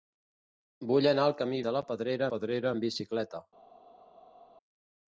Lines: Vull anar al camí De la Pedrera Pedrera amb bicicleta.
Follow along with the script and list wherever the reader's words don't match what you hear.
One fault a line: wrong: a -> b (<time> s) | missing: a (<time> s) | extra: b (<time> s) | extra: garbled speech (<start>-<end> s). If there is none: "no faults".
no faults